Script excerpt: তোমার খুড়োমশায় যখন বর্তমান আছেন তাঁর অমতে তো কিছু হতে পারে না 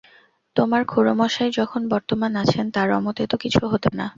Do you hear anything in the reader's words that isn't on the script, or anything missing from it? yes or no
yes